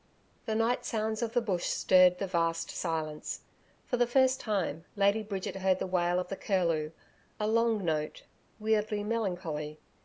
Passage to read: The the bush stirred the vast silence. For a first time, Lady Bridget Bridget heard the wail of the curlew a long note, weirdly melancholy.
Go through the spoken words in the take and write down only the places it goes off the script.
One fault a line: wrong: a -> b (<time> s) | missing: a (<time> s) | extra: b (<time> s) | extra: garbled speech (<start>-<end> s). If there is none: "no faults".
extra: night sounds of (0.6 s)
wrong: a -> the (4.0 s)
missing: Bridget (5.6 s)